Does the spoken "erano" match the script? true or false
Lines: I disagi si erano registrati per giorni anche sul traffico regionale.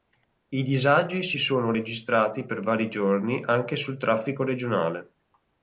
false